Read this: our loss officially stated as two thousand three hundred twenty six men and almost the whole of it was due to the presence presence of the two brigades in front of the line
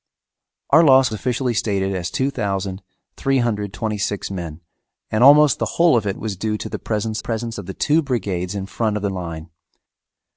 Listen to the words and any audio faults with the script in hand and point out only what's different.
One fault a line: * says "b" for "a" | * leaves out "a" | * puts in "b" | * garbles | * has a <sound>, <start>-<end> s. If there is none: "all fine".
all fine